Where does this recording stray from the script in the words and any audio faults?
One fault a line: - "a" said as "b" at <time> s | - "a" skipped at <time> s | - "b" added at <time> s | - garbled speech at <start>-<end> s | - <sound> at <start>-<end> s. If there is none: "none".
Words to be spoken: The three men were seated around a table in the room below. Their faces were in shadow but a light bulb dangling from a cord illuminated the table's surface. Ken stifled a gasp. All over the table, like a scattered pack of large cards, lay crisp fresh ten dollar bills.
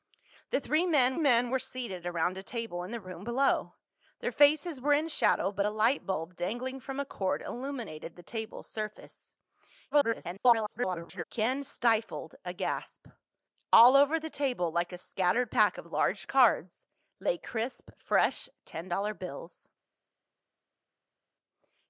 - "men" added at 1.2 s
- garbled speech at 9.9-11.2 s